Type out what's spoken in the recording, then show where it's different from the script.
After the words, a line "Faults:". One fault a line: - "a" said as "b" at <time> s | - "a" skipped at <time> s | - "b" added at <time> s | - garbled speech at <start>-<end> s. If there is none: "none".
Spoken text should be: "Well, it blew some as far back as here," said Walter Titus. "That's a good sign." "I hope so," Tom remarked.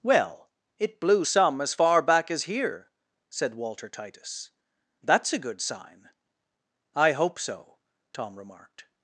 "Well, it blew some as far back as here," said Walter Titus. "That's a good sign." "I hope so," Tom remarked.
Faults:
none